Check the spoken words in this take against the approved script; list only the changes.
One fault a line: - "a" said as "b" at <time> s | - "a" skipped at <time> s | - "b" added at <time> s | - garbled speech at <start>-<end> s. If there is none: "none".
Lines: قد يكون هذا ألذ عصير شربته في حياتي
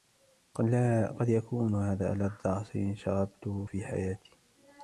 none